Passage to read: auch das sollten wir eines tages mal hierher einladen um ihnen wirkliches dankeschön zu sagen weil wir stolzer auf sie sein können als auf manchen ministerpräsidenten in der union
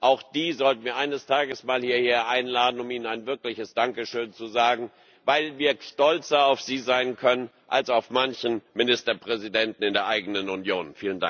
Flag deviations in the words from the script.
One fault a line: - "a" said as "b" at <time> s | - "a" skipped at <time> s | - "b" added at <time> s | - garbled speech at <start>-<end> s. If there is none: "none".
- "das" said as "die" at 0.2 s
- "ein" added at 3.0 s
- "eigenen" added at 10.1 s